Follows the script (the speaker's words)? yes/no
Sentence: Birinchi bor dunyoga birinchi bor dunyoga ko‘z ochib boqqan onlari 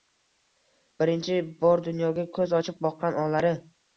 no